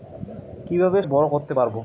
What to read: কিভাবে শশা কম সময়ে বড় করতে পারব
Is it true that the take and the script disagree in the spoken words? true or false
true